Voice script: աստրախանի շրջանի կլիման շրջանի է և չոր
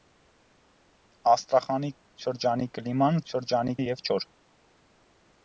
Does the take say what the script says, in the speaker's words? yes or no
yes